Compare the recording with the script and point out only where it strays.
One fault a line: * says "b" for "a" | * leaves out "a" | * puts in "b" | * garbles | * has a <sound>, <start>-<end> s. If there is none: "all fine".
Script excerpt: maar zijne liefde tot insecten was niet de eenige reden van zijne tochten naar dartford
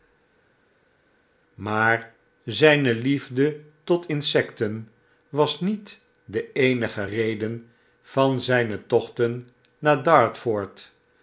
all fine